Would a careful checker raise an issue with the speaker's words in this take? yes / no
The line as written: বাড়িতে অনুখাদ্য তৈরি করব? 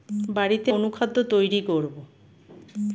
no